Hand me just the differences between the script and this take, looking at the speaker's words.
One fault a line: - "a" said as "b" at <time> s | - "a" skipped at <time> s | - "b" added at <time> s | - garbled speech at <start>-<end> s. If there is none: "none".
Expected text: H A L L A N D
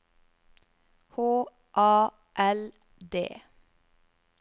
- "L A N" skipped at 2.7 s